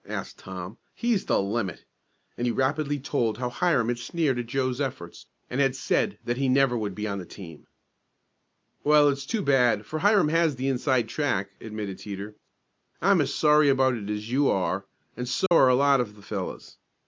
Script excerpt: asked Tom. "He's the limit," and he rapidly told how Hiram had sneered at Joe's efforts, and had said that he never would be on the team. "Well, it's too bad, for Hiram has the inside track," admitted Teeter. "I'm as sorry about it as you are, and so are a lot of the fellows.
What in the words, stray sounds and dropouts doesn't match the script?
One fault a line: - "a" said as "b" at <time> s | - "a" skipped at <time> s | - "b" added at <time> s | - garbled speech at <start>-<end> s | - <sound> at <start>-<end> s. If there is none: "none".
- dropout at 15.5-15.5 s